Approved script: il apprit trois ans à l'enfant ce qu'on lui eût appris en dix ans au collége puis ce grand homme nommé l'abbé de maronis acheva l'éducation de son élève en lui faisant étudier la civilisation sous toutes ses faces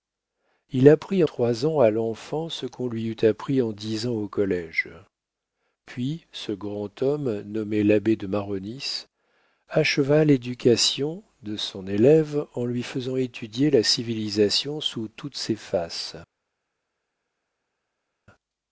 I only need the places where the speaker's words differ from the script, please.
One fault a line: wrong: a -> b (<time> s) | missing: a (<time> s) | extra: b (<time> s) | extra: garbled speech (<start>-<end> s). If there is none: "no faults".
no faults